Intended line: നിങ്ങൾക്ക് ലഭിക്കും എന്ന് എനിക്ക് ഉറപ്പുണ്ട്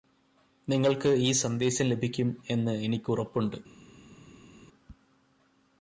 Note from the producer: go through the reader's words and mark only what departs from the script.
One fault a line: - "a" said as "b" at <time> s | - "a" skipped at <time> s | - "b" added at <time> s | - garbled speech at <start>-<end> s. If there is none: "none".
- "ഈ സന്ദേശം" added at 1.2 s